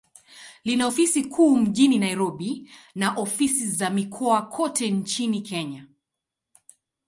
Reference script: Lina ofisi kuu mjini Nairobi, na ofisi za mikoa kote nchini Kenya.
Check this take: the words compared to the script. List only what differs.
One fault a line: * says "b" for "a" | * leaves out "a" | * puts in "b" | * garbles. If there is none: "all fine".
all fine